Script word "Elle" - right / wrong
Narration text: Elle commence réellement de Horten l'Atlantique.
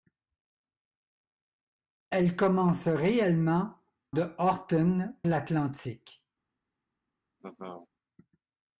right